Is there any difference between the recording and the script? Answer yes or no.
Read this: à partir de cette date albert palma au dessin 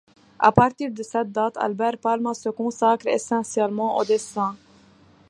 yes